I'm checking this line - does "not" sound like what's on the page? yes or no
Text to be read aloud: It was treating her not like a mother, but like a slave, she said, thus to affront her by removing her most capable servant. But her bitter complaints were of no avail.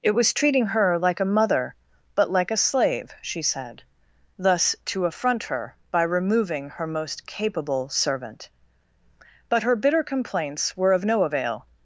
no